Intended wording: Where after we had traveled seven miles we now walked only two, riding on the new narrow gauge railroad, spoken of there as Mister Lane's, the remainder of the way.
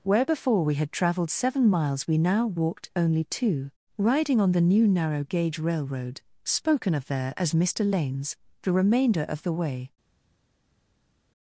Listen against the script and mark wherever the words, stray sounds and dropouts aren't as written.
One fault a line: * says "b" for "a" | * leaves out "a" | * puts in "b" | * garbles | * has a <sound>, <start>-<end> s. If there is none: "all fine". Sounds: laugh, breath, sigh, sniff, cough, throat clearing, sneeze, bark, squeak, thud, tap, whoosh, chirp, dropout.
* says "before" for "after"